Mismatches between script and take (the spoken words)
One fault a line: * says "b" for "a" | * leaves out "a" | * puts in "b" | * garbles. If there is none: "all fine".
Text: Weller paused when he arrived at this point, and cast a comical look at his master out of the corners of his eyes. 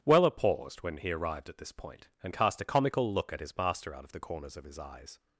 all fine